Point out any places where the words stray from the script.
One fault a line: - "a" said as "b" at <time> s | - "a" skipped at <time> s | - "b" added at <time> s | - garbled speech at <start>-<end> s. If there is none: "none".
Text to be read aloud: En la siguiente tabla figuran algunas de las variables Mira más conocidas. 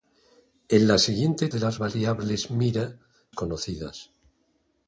- "tabla figuran algunas" skipped at 1.5 s
- "más" skipped at 3.0 s